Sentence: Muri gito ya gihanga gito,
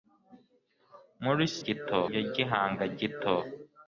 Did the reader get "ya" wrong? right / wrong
right